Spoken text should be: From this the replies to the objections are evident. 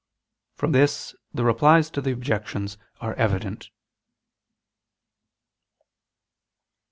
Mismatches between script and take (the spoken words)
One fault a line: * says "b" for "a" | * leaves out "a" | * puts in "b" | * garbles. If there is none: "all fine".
all fine